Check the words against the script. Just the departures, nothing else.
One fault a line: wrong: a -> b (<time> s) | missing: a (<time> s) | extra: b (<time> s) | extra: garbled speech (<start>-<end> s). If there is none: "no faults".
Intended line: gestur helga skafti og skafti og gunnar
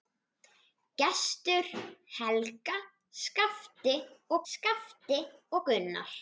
no faults